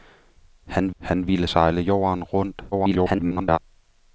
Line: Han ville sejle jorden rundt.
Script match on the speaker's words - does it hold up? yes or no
no